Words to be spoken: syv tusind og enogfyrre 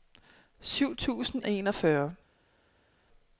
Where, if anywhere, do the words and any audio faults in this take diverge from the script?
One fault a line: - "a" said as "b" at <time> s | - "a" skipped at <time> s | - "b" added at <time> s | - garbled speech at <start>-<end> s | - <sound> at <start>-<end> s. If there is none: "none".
none